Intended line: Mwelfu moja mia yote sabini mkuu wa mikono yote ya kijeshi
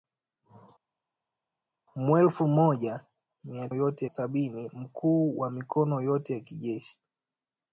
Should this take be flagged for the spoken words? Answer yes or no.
no